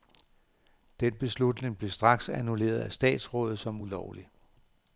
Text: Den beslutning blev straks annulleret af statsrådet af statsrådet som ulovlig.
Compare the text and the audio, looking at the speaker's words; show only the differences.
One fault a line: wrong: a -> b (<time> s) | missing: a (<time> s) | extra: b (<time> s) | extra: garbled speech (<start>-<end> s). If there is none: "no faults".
missing: af statsrådet (3.6 s)